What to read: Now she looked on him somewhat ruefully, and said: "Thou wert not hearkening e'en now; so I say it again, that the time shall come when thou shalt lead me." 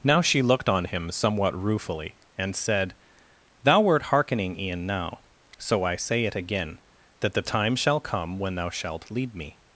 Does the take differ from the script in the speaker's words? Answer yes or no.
yes